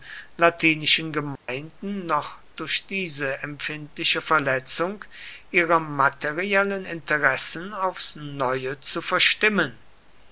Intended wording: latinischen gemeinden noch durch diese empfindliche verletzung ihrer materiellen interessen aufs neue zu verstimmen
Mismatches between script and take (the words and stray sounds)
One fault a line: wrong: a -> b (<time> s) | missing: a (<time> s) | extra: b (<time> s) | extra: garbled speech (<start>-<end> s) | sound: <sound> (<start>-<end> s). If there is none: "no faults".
sound: dropout (1.4-1.5 s)